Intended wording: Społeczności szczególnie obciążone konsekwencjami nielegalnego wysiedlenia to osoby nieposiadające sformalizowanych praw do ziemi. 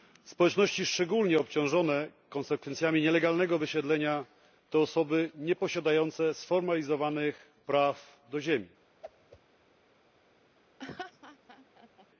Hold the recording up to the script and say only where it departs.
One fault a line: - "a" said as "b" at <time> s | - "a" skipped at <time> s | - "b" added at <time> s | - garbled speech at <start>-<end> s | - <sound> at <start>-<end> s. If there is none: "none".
- whoosh at 9.0-9.4 s
- laugh at 10.8-12.1 s